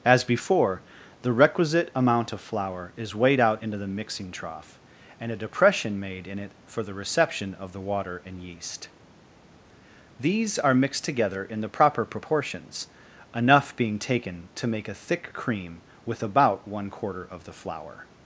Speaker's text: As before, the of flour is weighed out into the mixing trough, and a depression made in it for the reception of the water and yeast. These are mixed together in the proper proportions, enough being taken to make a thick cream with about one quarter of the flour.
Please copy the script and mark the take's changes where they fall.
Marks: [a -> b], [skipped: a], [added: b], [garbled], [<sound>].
As before, the [added: requisite amount] of flour is weighed out into the mixing trough, and a depression made in it for the reception of the water and yeast. These are mixed together in the proper proportions, enough being taken to make a thick cream with about one quarter of the flour.